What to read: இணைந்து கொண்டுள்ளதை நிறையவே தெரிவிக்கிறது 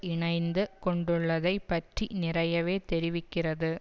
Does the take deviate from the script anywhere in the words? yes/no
yes